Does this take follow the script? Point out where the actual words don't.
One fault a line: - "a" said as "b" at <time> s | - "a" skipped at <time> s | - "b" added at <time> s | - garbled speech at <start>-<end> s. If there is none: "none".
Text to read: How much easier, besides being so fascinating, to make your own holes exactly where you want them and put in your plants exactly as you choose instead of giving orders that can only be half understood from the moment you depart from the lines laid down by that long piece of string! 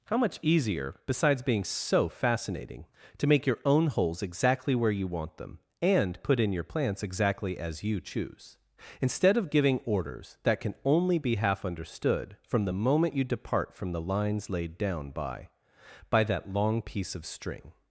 - "by" added at 16.1 s